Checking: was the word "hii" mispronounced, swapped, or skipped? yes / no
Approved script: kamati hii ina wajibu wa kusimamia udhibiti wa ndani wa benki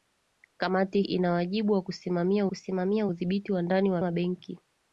yes